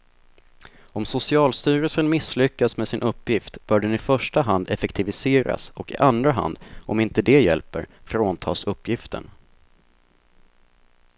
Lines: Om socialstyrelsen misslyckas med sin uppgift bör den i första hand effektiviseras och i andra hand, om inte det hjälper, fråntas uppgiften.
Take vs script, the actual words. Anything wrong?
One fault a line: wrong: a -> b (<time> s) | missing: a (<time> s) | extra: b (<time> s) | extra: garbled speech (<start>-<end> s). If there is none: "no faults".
no faults